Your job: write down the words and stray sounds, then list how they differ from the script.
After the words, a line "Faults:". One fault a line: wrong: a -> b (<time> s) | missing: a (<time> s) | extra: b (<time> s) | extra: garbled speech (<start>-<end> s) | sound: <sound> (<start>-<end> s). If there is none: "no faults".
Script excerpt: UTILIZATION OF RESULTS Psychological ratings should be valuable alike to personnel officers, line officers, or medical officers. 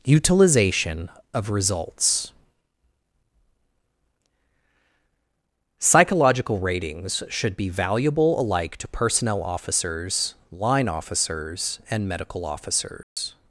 UTILIZATION OF RESULTS Psychological ratings should be valuable alike to personnel officers, line officers, and medical officers.
Faults:
wrong: or -> and (11.9 s)
sound: dropout (13.0-13.2 s)